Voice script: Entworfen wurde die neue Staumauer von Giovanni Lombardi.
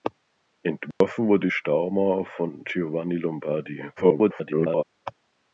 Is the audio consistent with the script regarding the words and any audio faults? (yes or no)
no